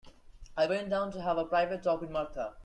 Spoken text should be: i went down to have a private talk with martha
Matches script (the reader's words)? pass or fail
pass